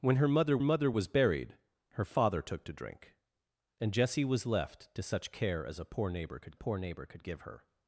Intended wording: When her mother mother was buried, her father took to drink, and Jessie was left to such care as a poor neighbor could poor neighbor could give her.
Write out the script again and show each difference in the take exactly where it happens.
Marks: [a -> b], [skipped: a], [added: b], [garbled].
When her mother mother was buried, her father took to drink, and Jessie was left to such care as a poor neighbor could poor neighbor could give her.